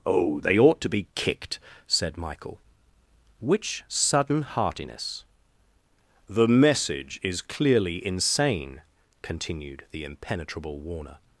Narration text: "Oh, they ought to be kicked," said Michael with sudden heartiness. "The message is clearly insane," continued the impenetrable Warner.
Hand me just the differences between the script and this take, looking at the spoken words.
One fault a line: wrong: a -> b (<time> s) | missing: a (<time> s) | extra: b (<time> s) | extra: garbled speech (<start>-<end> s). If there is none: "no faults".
wrong: with -> which (3.4 s)